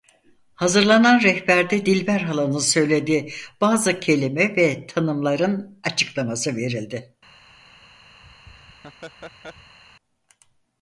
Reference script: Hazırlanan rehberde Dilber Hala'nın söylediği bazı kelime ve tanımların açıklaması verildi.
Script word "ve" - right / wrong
right